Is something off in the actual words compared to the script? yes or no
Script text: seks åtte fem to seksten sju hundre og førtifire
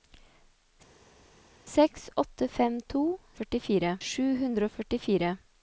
yes